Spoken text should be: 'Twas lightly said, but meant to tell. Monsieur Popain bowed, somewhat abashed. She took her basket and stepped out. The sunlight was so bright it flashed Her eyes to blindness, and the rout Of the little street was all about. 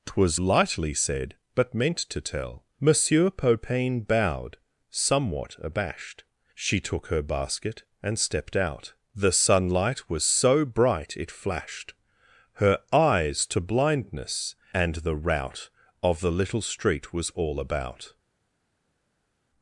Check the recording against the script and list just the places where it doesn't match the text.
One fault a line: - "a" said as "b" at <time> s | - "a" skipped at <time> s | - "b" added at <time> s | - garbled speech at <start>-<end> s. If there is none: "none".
none